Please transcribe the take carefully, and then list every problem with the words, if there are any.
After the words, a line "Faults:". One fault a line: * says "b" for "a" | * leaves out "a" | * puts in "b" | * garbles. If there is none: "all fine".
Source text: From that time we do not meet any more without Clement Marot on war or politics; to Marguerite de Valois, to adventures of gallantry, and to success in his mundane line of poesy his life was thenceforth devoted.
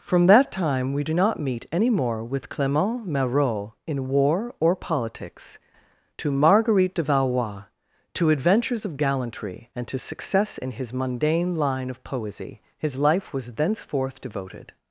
From that time we do not meet any more with Clement Marot in war or politics; to Marguerite de Valois, to adventures of gallantry, and to success in his mundane line of poesy his life was thenceforth devoted.
Faults:
* says "with" for "without"
* says "in" for "on"